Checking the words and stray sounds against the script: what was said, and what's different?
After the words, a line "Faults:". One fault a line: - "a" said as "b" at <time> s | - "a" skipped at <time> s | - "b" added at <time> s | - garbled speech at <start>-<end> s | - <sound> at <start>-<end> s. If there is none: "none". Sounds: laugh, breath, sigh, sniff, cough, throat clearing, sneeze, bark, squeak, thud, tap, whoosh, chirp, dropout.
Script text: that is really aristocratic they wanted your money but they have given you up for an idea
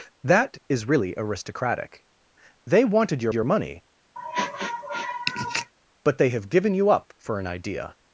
that is really aristocratic they wanted your your money but they have given you up for an idea
Faults:
- "your" added at 3.3 s
- sniff at 4.2-5.7 s